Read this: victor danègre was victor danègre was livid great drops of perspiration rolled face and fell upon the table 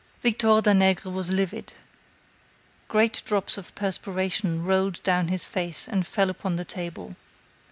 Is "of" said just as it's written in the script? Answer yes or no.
yes